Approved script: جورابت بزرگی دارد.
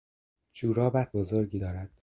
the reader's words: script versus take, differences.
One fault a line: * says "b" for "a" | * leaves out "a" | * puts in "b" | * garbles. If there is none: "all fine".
all fine